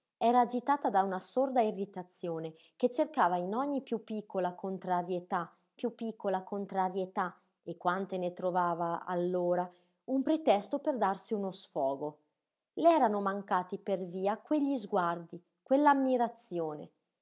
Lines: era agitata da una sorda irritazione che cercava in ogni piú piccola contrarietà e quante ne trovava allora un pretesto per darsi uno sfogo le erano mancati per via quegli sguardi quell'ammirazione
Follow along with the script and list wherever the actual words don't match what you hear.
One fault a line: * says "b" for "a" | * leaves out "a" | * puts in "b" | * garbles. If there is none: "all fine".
* puts in "piú piccola contrarietà"